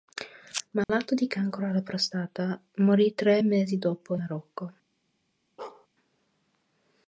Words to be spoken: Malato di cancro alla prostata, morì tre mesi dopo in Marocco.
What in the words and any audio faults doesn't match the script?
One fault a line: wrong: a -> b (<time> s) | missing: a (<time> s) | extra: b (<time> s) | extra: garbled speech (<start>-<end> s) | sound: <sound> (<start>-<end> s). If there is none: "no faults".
sound: dropout (0.8-0.9 s)
missing: in (4.2 s)
sound: bark (5.6-5.9 s)